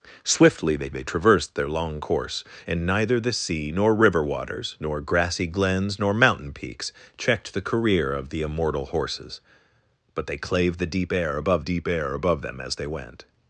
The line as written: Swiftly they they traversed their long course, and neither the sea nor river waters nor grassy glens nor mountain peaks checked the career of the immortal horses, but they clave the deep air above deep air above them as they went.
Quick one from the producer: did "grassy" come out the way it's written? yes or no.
yes